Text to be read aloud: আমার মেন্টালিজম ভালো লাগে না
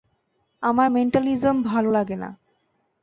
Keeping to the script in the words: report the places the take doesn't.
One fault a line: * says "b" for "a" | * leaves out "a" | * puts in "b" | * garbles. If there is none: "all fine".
all fine